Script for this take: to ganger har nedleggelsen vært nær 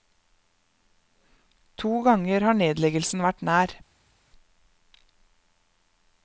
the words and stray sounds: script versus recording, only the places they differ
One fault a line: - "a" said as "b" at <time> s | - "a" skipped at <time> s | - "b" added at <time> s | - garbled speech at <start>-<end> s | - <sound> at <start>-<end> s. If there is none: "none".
none